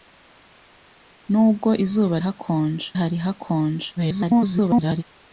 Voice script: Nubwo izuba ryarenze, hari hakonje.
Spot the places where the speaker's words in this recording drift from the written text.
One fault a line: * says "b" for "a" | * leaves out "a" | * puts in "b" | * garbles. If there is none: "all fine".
* says "hakonje" for "ryarenze"
* garbles